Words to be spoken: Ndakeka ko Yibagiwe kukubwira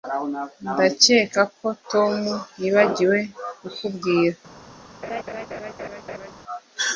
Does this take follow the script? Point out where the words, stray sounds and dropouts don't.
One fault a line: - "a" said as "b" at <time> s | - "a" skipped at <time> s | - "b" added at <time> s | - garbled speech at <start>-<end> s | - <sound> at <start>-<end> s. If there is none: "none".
- "Tom" added at 1.9 s
- laugh at 5.0-6.3 s